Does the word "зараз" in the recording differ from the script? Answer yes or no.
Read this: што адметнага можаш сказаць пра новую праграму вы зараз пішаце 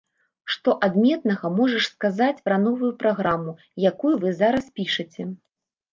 no